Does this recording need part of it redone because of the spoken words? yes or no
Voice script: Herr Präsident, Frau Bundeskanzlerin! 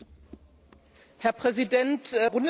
yes